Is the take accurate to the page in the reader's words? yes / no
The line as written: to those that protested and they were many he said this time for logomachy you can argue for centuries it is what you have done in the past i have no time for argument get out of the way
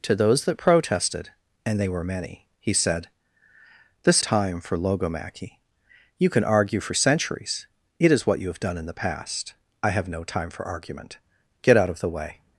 yes